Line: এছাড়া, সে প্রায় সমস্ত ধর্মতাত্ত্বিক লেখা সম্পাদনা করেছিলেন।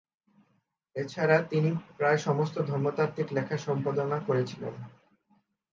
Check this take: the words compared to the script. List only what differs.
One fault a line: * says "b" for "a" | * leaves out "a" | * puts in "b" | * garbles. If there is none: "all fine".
* says "তিনি" for "সে"